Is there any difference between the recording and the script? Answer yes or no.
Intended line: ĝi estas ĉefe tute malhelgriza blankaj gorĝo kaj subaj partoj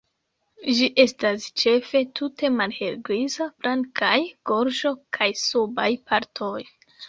no